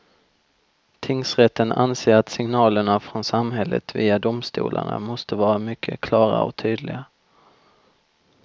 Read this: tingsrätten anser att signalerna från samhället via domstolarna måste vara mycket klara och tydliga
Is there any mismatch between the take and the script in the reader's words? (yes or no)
no